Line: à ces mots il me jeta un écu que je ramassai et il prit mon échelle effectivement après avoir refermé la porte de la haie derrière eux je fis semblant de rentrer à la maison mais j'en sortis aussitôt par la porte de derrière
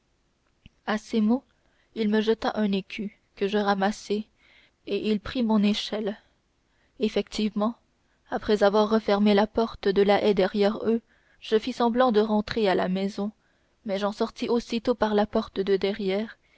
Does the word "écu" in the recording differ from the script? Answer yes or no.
no